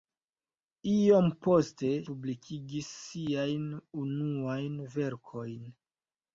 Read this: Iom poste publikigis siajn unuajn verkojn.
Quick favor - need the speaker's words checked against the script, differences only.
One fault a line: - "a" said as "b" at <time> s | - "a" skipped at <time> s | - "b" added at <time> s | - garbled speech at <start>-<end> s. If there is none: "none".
none